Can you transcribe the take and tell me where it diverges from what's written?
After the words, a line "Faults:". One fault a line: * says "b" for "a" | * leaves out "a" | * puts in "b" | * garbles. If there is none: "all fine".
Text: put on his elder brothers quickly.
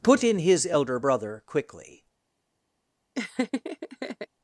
put in his elder brother quickly.
Faults:
* says "in" for "on"
* says "brother" for "brothers"